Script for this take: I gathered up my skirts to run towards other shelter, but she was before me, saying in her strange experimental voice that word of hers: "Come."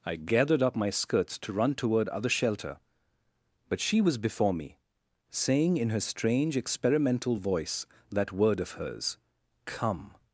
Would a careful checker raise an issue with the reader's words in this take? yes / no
yes